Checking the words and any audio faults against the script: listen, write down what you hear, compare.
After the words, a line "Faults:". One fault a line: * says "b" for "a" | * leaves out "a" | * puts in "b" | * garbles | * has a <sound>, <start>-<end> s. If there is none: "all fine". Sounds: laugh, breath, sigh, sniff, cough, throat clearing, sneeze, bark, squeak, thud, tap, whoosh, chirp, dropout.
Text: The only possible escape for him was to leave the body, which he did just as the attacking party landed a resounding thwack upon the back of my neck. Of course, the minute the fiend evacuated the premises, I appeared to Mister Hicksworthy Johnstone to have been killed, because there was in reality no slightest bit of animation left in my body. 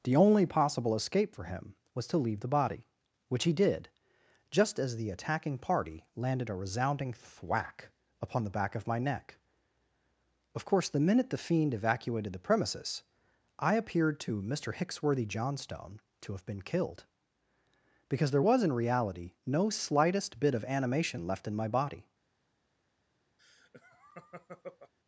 The only possible escape for him was to leave the body, which he did just as the attacking party landed a resounding thwack upon the back of my neck. Of course, the minute the fiend evacuated the premises, I appeared to Mister Hicksworthy Johnstone to have been killed, because there was in reality no slightest bit of animation left in my body.
Faults:
* has a laugh, 23.4-24.9 s